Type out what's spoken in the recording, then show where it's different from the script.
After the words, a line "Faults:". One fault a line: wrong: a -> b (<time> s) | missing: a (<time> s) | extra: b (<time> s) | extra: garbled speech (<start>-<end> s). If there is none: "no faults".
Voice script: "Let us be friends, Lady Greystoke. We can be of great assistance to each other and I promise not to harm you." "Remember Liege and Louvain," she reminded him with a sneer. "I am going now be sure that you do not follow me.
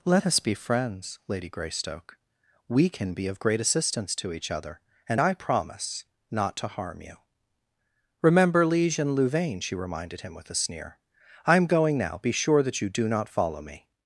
"Let us be friends, Lady Greystoke. We can be of great assistance to each other and I promise not to harm you." "Remember Liege and Louvain," she reminded him with a sneer. "I am going now be sure that you do not follow me.
Faults:
no faults